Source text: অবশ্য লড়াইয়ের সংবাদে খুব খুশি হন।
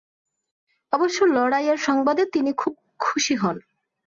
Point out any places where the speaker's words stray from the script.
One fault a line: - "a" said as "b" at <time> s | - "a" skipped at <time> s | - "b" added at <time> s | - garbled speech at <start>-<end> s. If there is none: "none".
- "তিনি" added at 2.2 s